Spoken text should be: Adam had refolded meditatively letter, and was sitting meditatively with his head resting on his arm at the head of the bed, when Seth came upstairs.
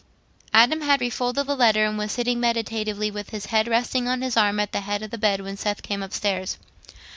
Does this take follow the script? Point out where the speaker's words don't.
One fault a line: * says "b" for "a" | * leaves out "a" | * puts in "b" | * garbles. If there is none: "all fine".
* says "the" for "meditatively"